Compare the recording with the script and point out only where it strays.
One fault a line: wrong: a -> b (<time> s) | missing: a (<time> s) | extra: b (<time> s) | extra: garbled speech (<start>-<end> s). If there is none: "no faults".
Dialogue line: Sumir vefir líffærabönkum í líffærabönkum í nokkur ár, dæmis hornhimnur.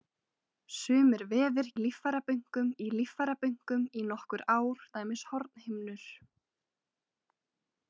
no faults